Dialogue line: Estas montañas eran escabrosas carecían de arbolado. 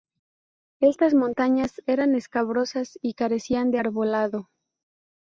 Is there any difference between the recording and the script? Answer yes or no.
yes